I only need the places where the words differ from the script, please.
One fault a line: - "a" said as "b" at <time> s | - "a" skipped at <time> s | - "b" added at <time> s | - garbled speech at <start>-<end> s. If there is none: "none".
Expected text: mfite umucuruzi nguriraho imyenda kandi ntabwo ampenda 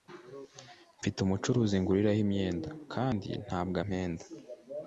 none